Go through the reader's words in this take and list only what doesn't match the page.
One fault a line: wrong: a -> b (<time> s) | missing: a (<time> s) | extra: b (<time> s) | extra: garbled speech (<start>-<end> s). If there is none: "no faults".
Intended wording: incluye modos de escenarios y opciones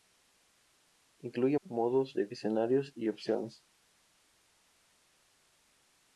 no faults